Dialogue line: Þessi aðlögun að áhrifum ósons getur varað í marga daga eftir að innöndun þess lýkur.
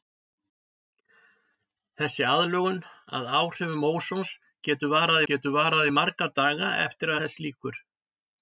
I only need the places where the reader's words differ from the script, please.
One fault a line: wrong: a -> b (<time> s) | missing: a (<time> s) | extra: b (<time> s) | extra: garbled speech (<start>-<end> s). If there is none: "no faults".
extra: getur varað (5.3 s)
missing: að innöndun (7.1 s)